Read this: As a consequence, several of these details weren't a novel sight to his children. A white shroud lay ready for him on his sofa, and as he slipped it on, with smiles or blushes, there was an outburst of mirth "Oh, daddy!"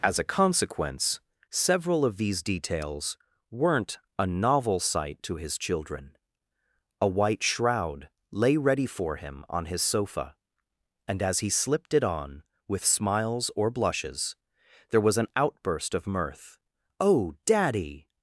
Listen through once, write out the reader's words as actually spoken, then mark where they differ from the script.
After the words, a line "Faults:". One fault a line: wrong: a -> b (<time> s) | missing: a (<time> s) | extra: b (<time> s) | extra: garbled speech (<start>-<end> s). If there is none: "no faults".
As a consequence, several of these details weren't a novel sight to his children. A white shroud lay ready for him on his sofa, and as he slipped it on, with smiles or blushes, there was an outburst of mirth "Oh, daddy!"
Faults:
no faults